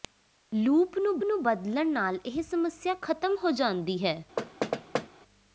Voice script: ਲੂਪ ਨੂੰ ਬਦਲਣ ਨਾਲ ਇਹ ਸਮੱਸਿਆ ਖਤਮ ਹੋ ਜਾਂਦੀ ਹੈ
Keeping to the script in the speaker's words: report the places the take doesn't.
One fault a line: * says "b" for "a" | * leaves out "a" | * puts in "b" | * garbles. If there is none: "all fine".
* puts in "ਨੂੰ"